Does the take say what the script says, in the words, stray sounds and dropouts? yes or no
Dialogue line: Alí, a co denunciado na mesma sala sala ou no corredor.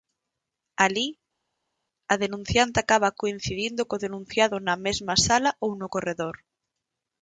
no